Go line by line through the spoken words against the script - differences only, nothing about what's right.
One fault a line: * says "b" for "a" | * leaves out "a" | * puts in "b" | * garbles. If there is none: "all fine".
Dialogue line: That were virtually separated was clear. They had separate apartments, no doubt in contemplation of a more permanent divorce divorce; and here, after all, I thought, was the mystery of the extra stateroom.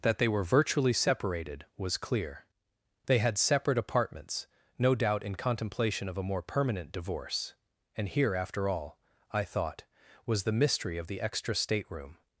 * puts in "they"
* leaves out "divorce"